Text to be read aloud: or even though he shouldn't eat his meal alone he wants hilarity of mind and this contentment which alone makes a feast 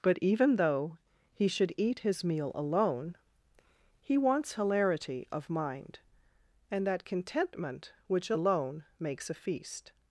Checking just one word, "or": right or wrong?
wrong